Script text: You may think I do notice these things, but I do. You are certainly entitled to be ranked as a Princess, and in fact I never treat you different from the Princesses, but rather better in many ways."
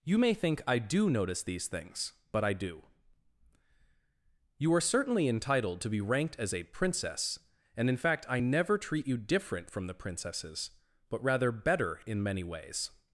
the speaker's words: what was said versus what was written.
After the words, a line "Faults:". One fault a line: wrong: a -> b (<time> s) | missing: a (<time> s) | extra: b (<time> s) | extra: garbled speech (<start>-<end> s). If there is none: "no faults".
You may think I do notice these things, but I do. You are certainly entitled to be ranked as a Princess, and in fact I never treat you different from the Princesses, but rather better in many ways."
Faults:
no faults